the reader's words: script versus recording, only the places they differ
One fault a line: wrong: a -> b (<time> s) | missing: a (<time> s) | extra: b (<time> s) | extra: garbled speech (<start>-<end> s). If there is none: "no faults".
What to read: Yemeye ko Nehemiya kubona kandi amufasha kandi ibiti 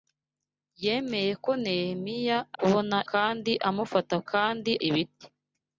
no faults